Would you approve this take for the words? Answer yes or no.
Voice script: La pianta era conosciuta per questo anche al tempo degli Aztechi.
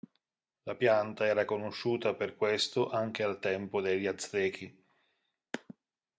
yes